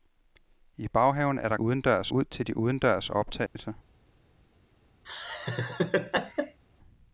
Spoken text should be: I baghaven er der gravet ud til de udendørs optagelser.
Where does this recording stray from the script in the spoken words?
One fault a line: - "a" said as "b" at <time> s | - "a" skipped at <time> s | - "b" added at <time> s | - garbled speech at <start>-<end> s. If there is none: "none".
- "gravet" said as "udendørs" at 1.6 s